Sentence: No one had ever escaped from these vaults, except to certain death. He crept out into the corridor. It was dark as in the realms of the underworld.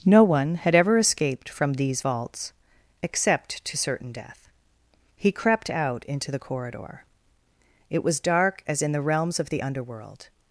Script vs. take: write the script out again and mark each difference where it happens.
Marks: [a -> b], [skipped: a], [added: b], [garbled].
No one had ever escaped from these vaults, except to certain death. He crept out into the corridor. It was dark as in the realms of the underworld.